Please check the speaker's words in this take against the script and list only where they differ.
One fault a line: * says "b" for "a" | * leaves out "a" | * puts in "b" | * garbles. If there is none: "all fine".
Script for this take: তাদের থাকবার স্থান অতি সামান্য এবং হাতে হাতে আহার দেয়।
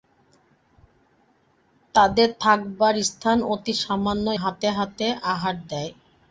* leaves out "এবং"